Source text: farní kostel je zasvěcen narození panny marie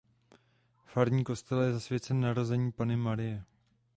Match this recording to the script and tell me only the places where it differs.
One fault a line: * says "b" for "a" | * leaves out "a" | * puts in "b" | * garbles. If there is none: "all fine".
all fine